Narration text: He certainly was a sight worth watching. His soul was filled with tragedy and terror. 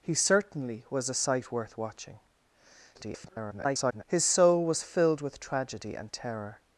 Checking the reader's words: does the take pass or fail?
fail